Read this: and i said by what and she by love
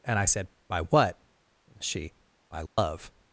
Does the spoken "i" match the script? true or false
true